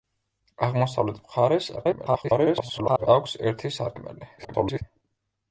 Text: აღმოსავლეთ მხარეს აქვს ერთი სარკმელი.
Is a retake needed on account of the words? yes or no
yes